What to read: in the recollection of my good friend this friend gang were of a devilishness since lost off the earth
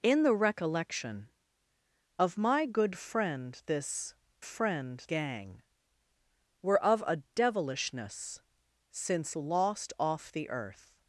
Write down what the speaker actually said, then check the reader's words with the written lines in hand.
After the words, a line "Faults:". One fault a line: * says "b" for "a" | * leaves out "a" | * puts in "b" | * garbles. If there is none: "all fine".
in the recollection of my good friend this friend gang were of a devilishness since lost off the earth
Faults:
all fine